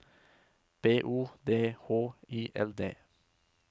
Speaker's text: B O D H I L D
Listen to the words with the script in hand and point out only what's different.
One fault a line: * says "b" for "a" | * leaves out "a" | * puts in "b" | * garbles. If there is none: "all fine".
all fine